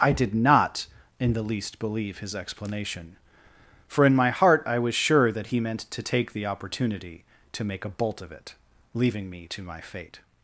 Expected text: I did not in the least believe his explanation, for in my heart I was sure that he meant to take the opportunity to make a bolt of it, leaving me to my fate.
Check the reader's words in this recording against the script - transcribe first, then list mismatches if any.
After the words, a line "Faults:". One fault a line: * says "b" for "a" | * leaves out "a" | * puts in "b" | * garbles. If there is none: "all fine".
I did not in the least believe his explanation, for in my heart I was sure that he meant to take the opportunity to make a bolt of it, leaving me to my fate.
Faults:
all fine